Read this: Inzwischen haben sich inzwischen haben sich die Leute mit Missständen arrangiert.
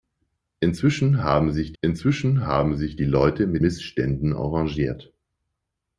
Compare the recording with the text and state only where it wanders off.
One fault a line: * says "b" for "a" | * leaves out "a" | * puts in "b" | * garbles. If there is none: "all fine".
all fine